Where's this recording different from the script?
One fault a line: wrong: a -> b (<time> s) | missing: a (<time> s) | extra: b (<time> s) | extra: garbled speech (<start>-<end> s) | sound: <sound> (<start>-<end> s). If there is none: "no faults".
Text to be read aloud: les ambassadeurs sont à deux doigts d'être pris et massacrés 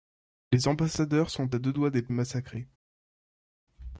missing: pris (2.1 s)